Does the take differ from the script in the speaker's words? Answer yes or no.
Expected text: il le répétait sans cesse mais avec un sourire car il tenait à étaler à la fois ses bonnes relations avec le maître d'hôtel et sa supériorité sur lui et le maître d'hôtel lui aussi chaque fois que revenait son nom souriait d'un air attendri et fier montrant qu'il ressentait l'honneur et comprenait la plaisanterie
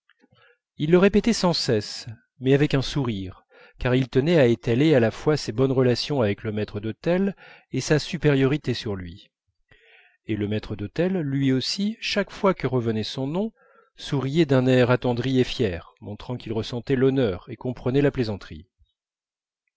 no